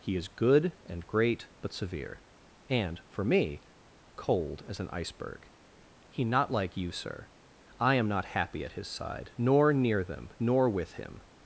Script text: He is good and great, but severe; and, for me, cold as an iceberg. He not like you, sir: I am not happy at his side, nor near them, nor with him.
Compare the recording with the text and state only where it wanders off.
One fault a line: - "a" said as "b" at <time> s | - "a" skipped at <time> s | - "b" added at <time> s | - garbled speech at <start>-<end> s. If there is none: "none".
none